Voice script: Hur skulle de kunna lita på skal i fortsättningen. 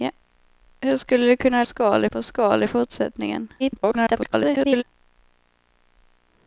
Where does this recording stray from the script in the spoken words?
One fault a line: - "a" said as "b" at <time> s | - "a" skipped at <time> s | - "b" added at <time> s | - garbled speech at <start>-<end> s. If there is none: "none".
- "lita" said as "skal" at 1.6 s
- garbled speech at 3.6-4.8 s